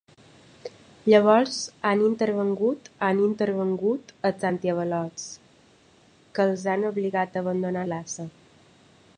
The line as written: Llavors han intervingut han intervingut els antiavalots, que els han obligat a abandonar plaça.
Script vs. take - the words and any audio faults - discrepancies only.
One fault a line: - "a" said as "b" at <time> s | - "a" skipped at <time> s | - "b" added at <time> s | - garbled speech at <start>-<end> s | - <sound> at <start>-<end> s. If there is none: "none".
none